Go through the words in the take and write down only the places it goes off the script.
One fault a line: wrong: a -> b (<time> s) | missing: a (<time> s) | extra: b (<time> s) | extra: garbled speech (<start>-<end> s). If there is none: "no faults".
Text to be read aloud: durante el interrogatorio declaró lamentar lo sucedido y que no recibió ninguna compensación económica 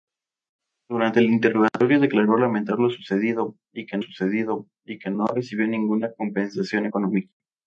extra: sucedido y que (4.0 s)